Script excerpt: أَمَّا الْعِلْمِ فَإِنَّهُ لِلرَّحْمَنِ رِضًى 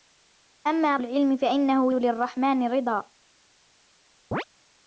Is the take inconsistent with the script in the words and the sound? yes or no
yes